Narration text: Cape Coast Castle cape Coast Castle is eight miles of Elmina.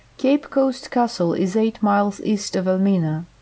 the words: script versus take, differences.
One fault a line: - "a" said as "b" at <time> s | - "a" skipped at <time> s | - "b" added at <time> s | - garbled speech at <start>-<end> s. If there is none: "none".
- "cape Coast Castle" skipped at 1.3 s
- "east" added at 2.2 s